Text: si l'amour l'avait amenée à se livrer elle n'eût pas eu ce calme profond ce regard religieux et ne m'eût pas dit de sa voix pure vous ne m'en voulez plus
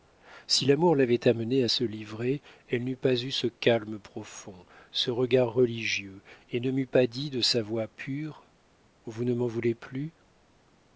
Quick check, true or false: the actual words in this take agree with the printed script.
true